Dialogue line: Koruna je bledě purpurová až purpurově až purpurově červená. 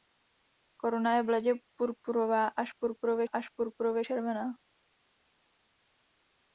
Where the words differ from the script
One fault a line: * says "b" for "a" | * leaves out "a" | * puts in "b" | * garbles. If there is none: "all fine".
all fine